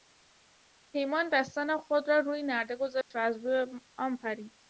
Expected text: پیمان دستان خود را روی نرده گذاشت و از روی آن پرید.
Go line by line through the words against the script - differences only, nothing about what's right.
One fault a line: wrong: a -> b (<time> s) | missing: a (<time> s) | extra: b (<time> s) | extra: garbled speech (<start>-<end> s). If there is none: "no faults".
no faults